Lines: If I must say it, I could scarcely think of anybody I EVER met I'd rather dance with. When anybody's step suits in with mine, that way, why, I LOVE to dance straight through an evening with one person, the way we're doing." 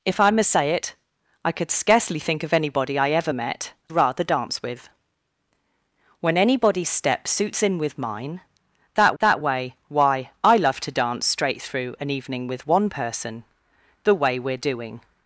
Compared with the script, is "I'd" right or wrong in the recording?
wrong